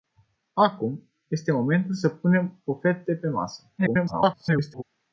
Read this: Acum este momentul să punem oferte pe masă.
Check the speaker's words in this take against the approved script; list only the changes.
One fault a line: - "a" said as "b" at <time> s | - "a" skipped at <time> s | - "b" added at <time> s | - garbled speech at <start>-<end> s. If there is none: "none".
- garbled speech at 3.8-4.8 s